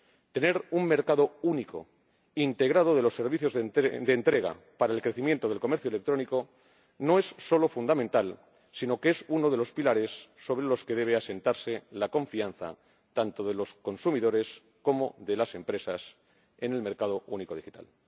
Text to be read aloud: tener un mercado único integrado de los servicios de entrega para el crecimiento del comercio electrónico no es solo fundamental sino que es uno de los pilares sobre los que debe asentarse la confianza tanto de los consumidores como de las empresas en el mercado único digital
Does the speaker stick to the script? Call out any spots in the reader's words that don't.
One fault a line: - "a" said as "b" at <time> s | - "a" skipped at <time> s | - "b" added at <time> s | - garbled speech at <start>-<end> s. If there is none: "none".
none